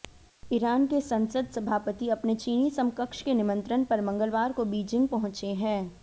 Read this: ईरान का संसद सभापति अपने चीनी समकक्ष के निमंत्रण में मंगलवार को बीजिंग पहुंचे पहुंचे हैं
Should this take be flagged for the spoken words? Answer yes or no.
yes